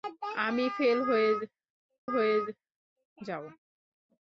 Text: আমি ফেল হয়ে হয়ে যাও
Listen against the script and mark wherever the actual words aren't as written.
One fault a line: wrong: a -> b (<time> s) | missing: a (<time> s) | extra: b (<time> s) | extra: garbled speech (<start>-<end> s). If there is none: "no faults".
no faults